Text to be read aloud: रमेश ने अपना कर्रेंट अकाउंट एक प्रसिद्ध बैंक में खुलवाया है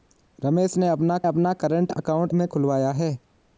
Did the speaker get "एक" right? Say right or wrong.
wrong